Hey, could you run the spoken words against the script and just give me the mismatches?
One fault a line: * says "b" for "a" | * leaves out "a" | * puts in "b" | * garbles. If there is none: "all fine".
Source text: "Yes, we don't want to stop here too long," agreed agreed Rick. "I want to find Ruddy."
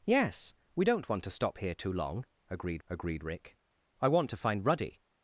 all fine